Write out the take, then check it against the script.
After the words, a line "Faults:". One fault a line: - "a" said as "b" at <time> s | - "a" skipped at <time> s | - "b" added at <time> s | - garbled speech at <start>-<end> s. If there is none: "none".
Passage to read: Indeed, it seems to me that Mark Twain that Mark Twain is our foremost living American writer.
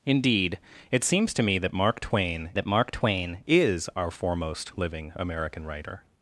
Indeed, it seems to me that Mark Twain that Mark Twain is our foremost living American writer.
Faults:
none